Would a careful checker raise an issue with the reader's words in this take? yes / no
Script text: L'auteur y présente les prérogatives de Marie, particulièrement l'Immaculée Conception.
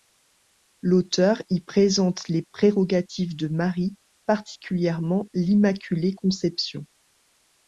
no